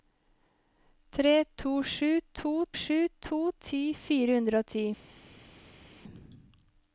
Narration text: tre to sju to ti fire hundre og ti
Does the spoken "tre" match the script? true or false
true